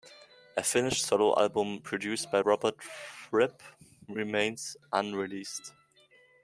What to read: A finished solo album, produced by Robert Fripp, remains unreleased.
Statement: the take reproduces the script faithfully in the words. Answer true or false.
true